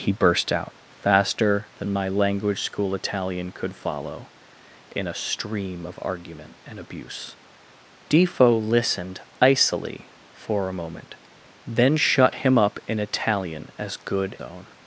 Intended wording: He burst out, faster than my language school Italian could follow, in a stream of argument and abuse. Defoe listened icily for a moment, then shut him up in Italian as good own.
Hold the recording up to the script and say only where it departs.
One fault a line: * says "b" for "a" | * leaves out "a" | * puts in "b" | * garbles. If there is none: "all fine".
all fine